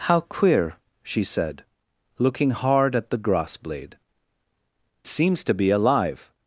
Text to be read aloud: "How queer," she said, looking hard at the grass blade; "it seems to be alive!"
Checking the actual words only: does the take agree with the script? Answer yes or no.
no